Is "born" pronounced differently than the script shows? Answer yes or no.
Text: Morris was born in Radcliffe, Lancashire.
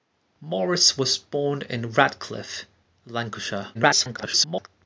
no